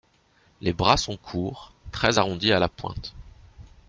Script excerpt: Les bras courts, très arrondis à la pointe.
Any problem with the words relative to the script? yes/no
yes